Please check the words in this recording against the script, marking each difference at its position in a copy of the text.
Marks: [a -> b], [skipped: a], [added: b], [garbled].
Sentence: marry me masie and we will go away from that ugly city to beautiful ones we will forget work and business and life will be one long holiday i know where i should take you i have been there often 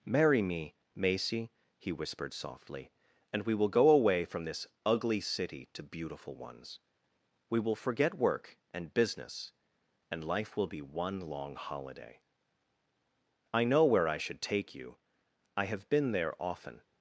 marry me masie [added: he whispered softly] and we will go away from [that -> this] ugly city to beautiful ones we will forget work and business and life will be one long holiday i know where i should take you i have been there often